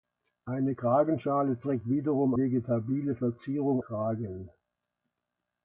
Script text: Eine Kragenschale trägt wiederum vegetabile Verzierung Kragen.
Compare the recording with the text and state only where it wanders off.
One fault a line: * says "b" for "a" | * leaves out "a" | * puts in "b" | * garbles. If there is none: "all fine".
all fine